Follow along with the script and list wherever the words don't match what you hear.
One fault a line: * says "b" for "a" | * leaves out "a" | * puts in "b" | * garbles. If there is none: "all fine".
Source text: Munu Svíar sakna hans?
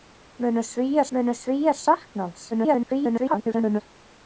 * puts in "munu Svíar"
* garbles